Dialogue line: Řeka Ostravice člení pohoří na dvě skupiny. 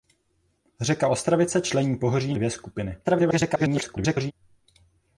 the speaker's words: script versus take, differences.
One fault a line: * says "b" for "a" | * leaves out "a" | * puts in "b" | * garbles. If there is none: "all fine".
* leaves out "na"
* garbles